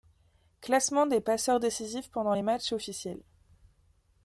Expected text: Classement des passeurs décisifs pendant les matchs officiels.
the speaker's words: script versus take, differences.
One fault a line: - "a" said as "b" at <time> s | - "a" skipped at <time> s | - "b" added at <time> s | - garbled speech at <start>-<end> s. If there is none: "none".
none